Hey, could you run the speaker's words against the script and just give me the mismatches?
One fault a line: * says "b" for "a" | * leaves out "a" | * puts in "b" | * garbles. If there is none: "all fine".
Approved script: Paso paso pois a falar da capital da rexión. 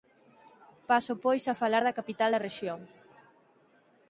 * leaves out "paso"